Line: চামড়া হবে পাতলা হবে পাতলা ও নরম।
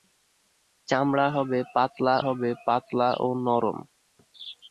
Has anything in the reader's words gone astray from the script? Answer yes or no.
no